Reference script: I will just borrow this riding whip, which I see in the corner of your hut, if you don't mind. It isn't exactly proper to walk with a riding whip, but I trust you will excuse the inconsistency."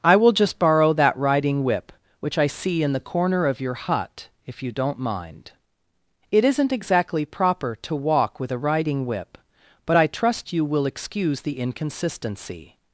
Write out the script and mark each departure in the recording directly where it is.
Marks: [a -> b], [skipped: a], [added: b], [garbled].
I will just borrow [this -> that] riding whip, which I see in the corner of your hut, if you don't mind. It isn't exactly proper to walk with a riding whip, but I trust you will excuse the inconsistency."